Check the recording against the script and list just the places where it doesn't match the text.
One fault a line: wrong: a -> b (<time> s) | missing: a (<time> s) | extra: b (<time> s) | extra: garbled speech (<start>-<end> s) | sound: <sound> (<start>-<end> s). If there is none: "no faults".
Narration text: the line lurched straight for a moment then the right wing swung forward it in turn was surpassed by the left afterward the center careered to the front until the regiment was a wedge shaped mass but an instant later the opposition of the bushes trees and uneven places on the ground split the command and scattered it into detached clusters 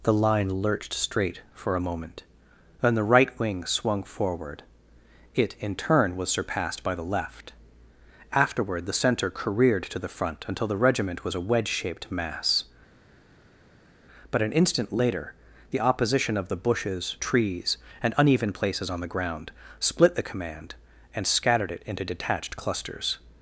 no faults